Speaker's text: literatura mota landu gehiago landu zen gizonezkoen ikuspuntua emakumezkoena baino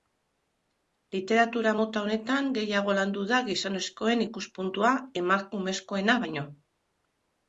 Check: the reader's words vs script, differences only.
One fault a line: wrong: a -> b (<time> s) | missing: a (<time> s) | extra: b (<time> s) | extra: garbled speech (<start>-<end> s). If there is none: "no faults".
wrong: landu -> honetan (2.0 s)
wrong: zen -> da (3.3 s)